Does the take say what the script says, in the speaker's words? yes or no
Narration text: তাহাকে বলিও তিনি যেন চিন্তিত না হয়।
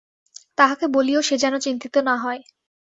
no